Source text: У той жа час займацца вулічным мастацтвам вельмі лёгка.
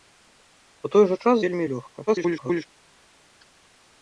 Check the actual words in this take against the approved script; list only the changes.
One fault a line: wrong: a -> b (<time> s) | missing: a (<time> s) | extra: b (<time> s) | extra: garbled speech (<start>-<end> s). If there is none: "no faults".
missing: займацца вулічным мастацтвам (1.4 s)
extra: garbled speech (2.1-2.7 s)